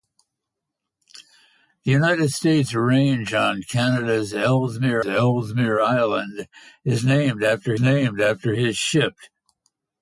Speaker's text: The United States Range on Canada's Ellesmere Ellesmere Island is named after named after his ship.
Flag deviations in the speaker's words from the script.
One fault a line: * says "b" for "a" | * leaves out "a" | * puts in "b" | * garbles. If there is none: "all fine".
all fine